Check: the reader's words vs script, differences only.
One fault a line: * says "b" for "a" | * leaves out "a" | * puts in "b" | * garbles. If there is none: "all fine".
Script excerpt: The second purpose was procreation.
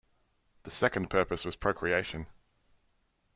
all fine